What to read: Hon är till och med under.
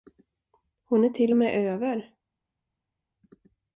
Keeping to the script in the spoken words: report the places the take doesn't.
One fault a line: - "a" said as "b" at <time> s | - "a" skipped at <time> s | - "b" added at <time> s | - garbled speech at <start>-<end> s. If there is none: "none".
- "under" said as "över" at 1.7 s